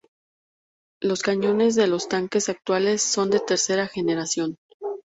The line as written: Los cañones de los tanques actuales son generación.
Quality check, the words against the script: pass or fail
fail